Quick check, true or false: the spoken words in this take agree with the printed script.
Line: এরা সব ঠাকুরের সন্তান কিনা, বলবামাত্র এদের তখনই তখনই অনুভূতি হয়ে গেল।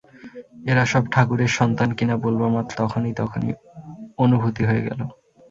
false